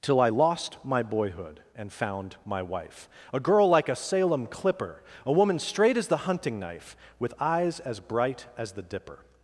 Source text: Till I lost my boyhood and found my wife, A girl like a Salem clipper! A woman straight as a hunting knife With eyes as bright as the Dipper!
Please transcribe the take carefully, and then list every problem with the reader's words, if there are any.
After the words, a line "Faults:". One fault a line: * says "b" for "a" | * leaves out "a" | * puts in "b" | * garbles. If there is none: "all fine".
Till I lost my boyhood and found my wife, A girl like a Salem clipper! A woman straight as the hunting knife With eyes as bright as the Dipper!
Faults:
* says "the" for "a"